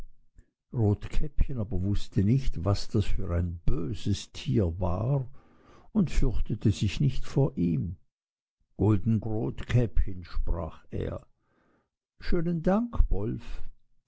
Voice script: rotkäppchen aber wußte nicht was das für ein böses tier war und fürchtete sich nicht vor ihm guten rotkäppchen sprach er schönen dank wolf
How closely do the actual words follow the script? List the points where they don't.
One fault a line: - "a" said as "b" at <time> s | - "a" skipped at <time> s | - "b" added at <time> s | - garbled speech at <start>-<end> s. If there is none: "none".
none